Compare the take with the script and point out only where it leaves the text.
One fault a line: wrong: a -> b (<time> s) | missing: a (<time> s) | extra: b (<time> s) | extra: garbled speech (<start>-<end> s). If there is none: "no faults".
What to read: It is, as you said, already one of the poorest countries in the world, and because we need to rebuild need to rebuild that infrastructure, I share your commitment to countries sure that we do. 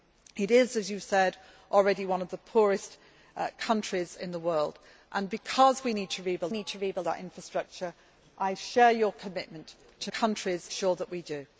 no faults